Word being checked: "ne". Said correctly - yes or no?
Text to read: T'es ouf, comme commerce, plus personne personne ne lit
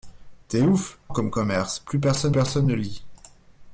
yes